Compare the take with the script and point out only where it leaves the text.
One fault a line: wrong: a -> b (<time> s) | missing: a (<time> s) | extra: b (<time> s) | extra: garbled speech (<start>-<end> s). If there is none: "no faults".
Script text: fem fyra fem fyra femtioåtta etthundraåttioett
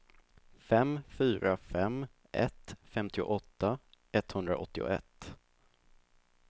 wrong: fyra -> ett (2.3 s)